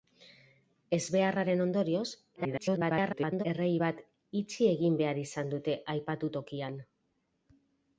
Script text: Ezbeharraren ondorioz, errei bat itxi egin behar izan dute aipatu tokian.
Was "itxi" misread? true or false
false